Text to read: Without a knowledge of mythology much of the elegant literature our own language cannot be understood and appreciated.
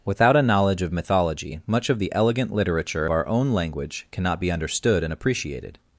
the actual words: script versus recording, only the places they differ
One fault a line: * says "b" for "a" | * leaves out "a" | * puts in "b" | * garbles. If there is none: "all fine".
all fine